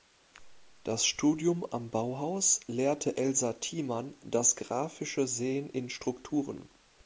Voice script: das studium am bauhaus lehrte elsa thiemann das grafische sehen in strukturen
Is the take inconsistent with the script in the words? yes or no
no